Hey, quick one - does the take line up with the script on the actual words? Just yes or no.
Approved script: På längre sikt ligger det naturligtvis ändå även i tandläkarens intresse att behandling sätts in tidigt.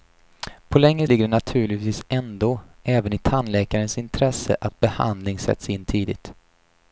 no